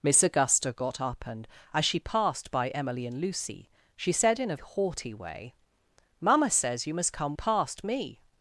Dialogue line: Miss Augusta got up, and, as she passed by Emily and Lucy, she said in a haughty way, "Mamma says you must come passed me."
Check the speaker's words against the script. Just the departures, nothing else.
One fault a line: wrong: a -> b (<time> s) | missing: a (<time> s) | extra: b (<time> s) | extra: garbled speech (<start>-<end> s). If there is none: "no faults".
no faults